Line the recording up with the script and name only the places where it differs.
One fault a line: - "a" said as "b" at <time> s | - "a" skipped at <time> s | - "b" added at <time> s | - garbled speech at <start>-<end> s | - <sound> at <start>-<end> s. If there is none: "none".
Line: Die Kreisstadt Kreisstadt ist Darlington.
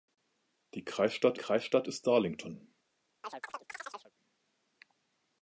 - chirp at 3.2-4.1 s